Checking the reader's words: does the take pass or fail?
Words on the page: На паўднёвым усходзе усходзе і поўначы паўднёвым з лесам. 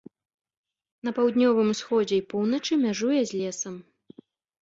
fail